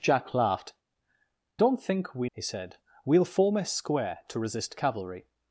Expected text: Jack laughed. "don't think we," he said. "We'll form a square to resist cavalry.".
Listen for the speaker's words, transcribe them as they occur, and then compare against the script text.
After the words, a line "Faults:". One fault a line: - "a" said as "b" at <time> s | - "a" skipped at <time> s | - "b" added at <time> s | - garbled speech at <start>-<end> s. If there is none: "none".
Jack laughed. "don't think we," he said. "We'll form a square to resist cavalry.".
Faults:
none